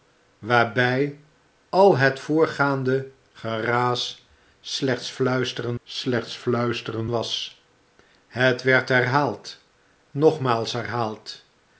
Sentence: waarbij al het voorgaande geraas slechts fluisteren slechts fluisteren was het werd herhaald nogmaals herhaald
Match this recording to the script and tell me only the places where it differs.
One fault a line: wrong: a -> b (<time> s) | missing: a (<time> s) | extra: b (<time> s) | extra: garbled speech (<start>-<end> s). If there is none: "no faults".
no faults